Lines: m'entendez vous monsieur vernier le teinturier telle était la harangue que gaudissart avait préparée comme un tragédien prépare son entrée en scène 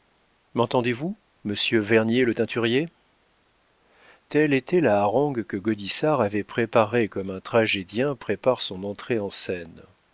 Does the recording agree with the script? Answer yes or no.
yes